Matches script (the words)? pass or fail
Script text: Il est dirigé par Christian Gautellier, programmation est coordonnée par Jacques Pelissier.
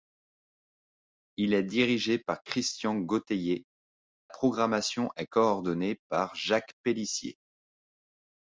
pass